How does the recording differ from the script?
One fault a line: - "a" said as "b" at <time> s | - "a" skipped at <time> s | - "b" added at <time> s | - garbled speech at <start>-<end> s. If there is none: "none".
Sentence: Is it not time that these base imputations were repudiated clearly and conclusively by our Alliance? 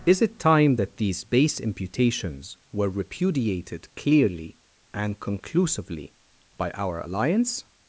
- "not" skipped at 0.4 s